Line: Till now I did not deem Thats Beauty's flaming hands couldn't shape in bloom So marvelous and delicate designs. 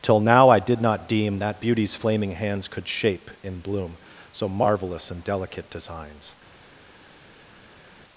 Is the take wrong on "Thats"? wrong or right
wrong